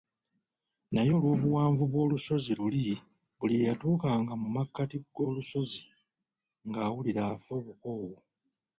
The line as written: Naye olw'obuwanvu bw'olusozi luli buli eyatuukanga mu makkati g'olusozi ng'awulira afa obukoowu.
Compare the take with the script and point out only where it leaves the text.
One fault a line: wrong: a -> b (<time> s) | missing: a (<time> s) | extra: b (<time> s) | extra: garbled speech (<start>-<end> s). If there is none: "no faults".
no faults